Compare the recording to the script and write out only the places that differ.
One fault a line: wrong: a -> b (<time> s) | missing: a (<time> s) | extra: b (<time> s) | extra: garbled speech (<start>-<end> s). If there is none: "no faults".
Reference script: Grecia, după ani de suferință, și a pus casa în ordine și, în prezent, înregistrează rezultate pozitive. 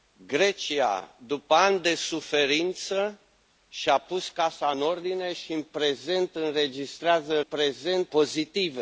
wrong: rezultate -> prezent (7.4 s)